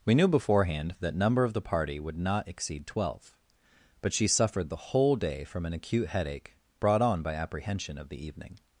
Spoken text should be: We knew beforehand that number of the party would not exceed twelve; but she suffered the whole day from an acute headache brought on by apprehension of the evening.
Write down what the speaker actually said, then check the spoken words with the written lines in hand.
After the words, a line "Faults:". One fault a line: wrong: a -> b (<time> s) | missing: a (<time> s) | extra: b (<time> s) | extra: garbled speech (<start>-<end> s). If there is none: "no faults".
We knew beforehand that number of the party would not exceed twelve; but she suffered the whole day from an acute headache brought on by apprehension of the evening.
Faults:
no faults